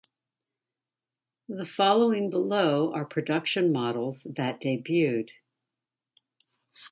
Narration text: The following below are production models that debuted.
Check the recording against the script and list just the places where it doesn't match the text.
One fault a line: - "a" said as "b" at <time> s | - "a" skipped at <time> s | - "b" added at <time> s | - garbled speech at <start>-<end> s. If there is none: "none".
none